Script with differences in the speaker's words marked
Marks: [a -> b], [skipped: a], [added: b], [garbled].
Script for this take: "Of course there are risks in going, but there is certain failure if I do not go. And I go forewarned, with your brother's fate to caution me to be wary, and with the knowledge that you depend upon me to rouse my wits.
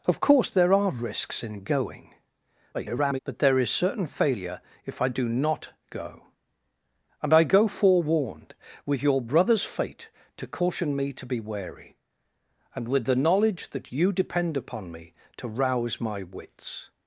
"Of course there are risks in going, [garbled] but there is certain failure if I do not go. And I go forewarned, with your brother's fate to caution me to be wary, and with the knowledge that you depend upon me to rouse my wits.